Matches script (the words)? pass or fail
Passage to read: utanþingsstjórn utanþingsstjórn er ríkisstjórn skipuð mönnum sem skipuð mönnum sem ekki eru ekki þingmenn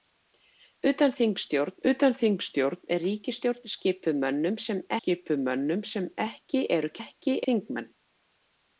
pass